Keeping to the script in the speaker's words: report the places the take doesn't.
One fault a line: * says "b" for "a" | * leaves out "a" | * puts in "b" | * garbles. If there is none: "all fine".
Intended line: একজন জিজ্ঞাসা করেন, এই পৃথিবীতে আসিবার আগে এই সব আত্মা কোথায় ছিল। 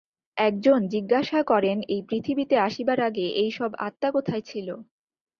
all fine